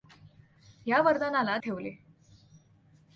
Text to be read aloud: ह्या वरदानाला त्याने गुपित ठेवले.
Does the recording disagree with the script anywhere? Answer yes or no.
yes